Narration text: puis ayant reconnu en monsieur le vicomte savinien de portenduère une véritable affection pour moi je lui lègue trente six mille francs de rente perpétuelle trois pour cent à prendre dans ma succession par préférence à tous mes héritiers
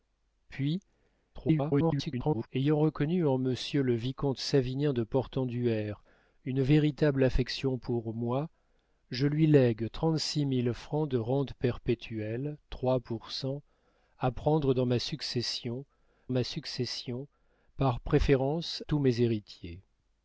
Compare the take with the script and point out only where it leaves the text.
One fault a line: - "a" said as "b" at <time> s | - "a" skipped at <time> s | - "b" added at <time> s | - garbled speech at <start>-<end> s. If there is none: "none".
- garbled speech at 1.3-2.5 s
- "ma succession" added at 16.3 s
- "à" skipped at 18.8 s